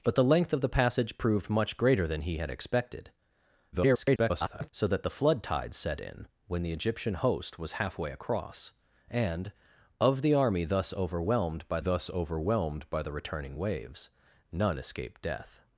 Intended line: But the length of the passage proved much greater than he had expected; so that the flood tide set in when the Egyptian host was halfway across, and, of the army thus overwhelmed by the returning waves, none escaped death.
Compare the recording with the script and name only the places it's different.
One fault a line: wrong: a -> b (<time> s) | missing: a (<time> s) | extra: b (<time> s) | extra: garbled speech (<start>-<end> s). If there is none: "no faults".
extra: garbled speech (3.7-4.7 s)
extra: thus overwhelmed by (11.8 s)